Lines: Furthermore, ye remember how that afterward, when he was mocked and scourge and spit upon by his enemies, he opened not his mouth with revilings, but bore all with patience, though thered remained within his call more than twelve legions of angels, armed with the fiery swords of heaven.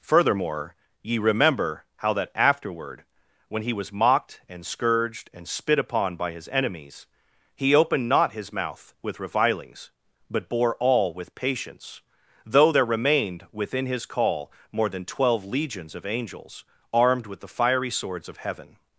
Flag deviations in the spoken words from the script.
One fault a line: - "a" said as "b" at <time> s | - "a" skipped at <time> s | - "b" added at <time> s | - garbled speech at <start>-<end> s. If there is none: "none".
- "scourge" said as "scourged" at 4.7 s
- "thered" said as "there" at 12.7 s